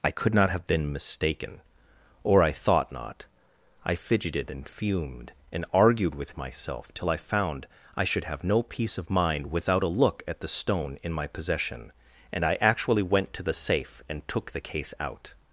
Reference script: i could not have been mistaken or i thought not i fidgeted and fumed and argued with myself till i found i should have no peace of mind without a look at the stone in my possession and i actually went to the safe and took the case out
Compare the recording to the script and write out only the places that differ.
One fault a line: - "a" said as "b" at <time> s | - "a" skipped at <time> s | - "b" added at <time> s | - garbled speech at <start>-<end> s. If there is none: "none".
none